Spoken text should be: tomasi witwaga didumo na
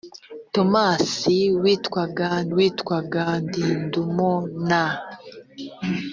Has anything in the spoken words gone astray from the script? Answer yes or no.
yes